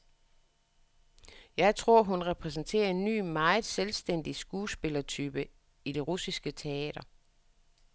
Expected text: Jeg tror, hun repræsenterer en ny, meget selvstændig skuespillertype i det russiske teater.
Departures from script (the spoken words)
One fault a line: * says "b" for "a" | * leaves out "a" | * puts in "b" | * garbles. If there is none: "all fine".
all fine